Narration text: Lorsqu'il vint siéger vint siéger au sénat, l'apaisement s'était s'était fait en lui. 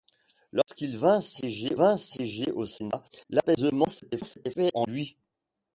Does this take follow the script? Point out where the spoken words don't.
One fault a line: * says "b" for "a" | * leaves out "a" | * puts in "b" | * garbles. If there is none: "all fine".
all fine